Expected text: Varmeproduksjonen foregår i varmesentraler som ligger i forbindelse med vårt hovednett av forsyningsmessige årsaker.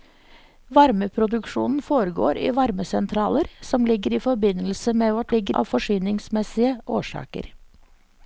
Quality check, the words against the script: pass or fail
fail